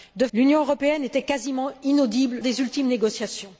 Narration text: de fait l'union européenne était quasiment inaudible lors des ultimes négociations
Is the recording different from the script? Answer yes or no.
yes